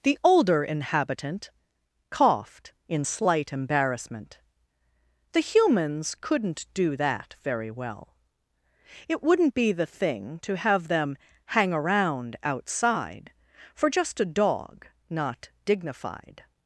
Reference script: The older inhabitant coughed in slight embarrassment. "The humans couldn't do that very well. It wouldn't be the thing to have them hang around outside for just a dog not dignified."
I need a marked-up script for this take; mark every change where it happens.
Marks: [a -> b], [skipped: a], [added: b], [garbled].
The older inhabitant coughed in slight embarrassment. "The humans couldn't do that very well. It wouldn't be the thing to have them hang around outside for just a dog not dignified."